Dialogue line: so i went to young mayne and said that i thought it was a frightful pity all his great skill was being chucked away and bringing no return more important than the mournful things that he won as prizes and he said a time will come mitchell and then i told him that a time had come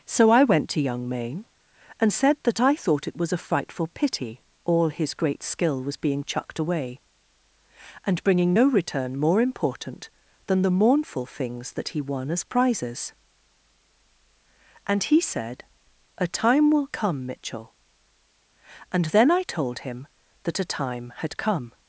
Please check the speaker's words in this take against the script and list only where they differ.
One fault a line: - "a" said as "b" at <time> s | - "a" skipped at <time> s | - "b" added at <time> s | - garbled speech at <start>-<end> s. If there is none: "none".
none